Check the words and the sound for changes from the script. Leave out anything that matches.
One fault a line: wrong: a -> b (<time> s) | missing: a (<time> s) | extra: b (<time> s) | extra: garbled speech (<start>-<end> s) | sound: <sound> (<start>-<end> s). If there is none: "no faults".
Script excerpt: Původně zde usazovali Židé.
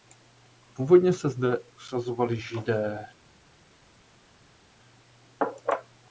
extra: se (1.1 s)